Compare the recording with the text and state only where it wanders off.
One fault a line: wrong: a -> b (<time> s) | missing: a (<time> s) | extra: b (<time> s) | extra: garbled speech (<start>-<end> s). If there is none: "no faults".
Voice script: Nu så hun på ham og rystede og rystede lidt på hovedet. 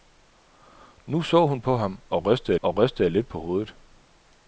no faults